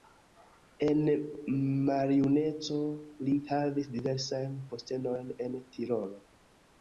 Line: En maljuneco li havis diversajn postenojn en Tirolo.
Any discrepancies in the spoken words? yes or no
no